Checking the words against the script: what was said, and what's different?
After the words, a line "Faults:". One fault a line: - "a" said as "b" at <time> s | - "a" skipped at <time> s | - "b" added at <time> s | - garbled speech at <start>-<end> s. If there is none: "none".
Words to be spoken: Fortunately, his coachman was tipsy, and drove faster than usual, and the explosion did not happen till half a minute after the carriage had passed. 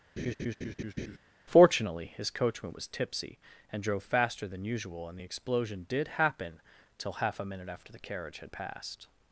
Fortunately, his coachman was tipsy, and drove faster than usual, and the explosion did happen till half a minute after the carriage had passed.
Faults:
- "not" skipped at 6.1 s